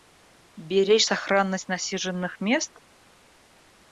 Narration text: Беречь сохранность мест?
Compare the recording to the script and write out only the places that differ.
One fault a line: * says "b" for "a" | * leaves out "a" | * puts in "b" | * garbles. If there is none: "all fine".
* puts in "насиженных"